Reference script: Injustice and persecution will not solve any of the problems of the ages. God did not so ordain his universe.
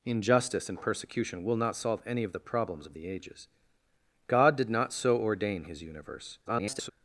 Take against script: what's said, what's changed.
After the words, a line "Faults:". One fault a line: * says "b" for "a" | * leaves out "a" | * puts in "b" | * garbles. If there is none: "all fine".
Injustice and persecution will not solve any of the problems of the ages. God did not so ordain his universe. [garbled]
Faults:
* garbles